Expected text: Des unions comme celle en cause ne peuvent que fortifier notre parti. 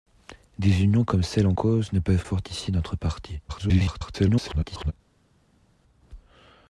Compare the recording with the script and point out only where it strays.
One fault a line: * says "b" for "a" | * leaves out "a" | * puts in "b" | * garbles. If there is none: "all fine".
* leaves out "que"
* garbles